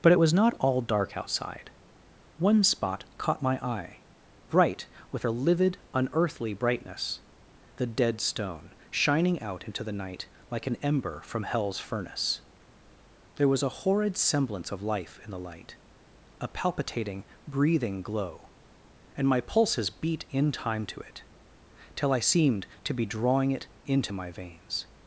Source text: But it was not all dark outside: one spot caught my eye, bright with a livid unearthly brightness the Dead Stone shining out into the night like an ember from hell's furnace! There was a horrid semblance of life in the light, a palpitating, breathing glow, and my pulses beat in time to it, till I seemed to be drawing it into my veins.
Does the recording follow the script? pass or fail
pass